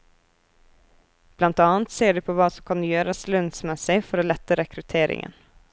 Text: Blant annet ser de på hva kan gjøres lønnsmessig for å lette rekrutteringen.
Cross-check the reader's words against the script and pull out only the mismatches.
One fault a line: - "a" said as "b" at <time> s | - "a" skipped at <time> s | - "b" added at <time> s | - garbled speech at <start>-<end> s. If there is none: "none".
- "som" added at 2.5 s